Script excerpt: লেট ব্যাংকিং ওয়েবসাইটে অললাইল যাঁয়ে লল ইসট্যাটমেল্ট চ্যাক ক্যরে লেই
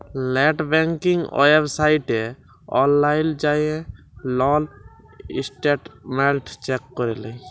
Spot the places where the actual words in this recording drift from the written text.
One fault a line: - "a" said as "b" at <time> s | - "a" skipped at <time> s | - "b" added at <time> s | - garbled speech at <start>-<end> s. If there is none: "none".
none